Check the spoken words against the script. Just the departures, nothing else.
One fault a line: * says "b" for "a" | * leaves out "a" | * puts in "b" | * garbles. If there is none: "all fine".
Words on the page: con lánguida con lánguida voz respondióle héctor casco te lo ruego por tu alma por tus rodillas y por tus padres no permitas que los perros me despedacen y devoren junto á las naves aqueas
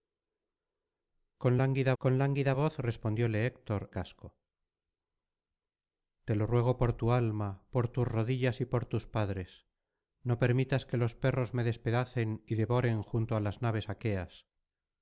all fine